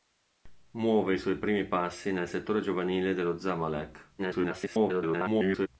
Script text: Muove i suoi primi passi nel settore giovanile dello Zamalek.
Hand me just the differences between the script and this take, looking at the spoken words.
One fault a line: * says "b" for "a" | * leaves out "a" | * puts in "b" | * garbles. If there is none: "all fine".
* garbles